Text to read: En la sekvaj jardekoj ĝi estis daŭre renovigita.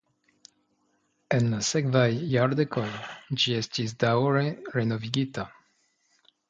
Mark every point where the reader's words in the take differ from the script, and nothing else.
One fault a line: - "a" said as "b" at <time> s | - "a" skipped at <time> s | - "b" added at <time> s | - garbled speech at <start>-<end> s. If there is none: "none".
none